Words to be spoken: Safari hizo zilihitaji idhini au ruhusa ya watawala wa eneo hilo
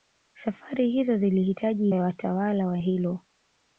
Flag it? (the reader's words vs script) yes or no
yes